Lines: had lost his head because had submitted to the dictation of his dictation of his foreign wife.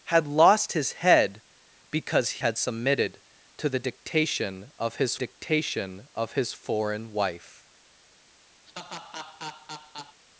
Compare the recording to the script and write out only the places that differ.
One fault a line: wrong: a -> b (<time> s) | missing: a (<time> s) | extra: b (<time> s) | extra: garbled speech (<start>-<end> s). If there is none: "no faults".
no faults